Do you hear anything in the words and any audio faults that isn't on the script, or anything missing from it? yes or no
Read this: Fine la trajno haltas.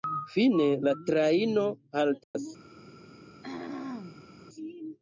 yes